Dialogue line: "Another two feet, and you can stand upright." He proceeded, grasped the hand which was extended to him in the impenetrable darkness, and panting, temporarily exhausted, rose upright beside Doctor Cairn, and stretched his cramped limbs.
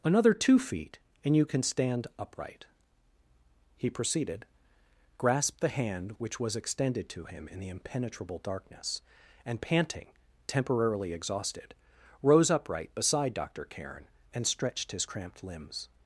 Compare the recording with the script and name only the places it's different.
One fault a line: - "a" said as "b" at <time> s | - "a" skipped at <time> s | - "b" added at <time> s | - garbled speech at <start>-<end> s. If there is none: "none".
none